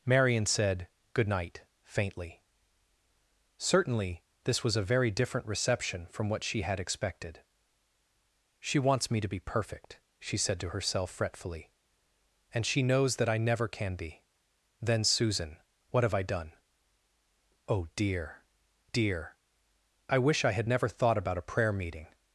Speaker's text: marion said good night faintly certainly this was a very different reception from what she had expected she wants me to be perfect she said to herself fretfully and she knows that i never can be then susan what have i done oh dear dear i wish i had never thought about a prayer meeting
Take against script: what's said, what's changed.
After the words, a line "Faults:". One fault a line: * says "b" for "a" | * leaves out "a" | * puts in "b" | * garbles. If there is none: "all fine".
marion said good night faintly certainly this was a very different reception from what she had expected she wants me to be perfect she said to herself fretfully and she knows that i never can be then susan what have i done oh dear dear i wish i had never thought about a prayer meeting
Faults:
all fine